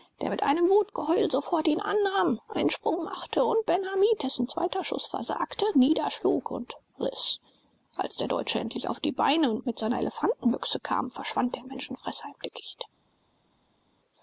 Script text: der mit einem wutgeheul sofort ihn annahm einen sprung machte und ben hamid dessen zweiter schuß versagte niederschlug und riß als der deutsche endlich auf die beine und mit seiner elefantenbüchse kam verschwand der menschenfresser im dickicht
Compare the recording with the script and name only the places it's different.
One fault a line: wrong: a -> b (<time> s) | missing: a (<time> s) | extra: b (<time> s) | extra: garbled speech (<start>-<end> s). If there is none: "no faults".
no faults